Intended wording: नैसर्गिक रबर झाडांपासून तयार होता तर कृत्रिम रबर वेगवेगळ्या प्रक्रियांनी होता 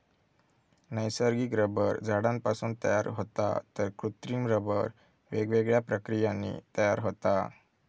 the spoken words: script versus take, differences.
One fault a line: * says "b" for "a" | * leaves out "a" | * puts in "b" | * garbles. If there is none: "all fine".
* puts in "तयार"